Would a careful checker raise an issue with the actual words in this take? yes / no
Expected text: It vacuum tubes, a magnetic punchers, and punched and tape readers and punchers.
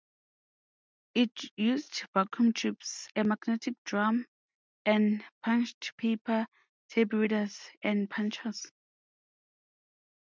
yes